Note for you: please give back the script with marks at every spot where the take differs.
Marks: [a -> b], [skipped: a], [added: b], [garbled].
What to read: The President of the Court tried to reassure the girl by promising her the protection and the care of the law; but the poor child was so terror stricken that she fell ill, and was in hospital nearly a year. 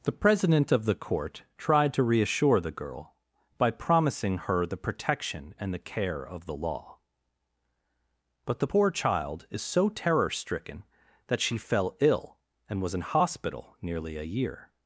The President of the Court tried to reassure the girl by promising her the protection and the care of the law; but the poor child [was -> is] so terror stricken that she fell ill, and was in hospital nearly a year.